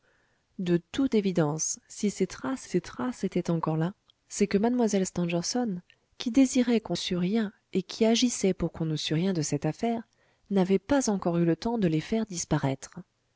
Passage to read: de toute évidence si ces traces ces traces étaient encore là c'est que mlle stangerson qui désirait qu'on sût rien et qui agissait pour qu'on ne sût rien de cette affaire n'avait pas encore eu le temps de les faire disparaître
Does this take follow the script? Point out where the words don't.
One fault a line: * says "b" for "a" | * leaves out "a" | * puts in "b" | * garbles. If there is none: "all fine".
all fine